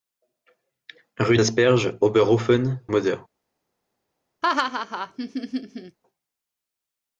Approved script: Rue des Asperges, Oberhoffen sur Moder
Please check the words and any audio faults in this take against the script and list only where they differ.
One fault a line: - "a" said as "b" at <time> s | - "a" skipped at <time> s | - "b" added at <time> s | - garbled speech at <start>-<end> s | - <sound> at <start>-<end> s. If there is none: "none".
- "des" skipped at 1.4 s
- "sur" skipped at 2.8 s
- laugh at 4.4-6.0 s